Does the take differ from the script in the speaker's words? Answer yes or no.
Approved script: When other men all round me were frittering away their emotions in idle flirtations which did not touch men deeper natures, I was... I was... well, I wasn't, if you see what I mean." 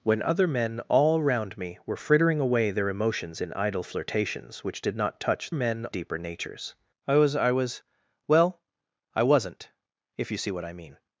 no